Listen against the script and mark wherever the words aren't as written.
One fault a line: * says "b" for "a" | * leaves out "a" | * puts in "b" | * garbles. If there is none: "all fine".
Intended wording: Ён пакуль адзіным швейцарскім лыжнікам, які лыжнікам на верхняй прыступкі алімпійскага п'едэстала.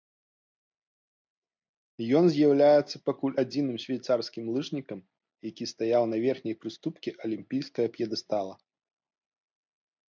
* puts in "з'яўляецца"
* says "стаяў" for "лыжнікам"